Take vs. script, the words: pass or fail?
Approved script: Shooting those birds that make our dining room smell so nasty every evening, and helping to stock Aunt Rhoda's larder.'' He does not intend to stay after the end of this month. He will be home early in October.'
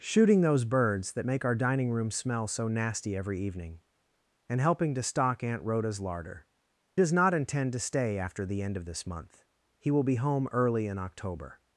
fail